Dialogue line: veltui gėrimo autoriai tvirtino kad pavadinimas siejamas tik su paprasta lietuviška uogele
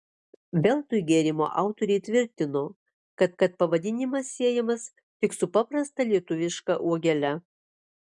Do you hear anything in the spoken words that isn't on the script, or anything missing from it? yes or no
yes